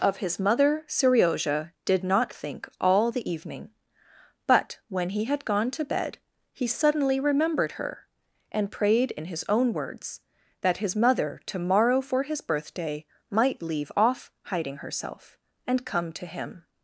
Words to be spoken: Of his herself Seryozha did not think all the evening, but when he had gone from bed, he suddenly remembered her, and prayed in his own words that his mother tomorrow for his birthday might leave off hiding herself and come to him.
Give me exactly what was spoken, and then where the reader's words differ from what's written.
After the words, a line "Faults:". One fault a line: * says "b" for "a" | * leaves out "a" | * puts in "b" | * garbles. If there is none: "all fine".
Of his mother Seryozha did not think all the evening, but when he had gone to bed, he suddenly remembered her, and prayed in his own words that his mother tomorrow for his birthday might leave off hiding herself and come to him.
Faults:
* says "mother" for "herself"
* says "to" for "from"